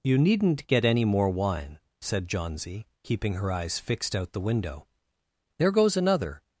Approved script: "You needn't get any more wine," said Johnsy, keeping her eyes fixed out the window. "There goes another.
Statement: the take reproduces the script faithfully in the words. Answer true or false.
true